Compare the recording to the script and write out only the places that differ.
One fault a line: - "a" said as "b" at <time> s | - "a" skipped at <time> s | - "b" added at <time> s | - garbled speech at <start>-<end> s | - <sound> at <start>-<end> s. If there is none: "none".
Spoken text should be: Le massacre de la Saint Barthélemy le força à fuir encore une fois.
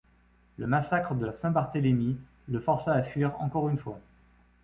none